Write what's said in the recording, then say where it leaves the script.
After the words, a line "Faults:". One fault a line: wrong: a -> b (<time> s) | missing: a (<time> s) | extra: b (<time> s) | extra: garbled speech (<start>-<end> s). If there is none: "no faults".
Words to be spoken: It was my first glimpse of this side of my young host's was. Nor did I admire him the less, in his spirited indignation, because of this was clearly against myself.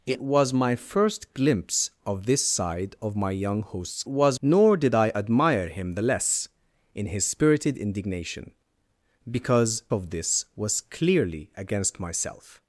It was my first glimpse of this side of my young host's was. Nor did I admire him the less, in his spirited indignation, because of this was clearly against myself.
Faults:
no faults